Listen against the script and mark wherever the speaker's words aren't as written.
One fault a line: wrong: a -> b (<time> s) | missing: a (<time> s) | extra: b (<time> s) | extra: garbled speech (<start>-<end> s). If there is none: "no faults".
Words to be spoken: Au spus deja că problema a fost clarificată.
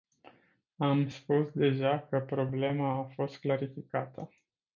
wrong: Au -> Am (0.8 s)